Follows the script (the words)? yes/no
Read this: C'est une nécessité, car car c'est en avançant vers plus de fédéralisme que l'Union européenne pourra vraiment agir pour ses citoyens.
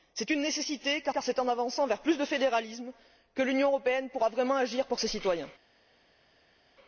yes